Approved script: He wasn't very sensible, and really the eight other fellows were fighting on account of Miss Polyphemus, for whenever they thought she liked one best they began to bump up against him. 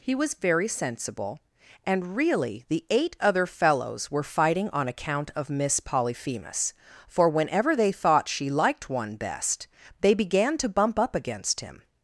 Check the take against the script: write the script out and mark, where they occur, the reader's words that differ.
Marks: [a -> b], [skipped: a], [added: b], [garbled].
He [wasn't -> was] very sensible, and really the eight other fellows were fighting on account of Miss Polyphemus, for whenever they thought she liked one best they began to bump up against him.